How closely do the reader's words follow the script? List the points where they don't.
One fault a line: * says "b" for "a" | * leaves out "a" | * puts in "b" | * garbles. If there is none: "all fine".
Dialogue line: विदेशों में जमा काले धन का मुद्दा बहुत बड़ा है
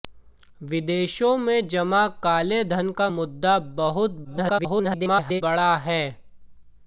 * garbles